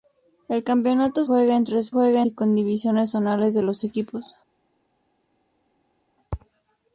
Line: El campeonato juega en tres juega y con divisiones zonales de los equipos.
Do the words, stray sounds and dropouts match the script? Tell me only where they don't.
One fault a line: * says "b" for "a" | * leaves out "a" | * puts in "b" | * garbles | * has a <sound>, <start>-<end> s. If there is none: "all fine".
all fine